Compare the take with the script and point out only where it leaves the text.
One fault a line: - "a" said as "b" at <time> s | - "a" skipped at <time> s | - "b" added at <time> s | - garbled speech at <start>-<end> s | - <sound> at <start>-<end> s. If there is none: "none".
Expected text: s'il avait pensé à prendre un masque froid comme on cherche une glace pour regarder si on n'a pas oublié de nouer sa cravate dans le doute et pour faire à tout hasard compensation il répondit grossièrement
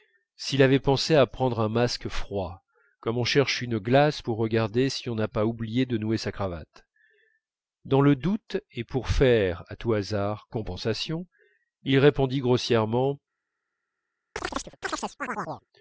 - chirp at 14.4-15.7 s